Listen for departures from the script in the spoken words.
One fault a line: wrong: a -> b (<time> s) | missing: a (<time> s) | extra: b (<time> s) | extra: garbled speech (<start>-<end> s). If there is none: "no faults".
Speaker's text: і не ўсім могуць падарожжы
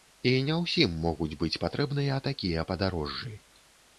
extra: быць патрэбныя такія (1.4 s)